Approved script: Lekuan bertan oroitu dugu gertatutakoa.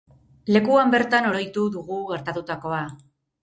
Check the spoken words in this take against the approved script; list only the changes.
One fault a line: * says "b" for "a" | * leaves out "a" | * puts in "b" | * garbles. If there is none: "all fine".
all fine